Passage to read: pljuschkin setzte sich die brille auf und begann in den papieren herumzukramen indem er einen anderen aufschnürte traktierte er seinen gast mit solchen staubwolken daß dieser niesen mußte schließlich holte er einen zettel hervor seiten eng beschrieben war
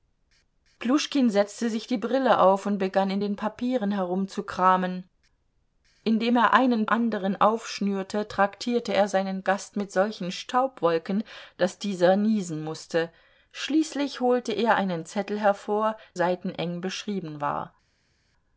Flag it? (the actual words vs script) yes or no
no